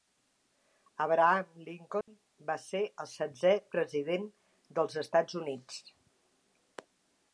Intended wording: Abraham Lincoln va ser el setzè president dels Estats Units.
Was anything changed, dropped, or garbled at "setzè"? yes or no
no